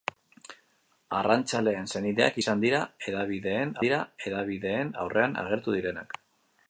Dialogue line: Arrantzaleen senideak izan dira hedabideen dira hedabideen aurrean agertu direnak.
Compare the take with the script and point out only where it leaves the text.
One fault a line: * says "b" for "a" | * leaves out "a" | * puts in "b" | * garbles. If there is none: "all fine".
all fine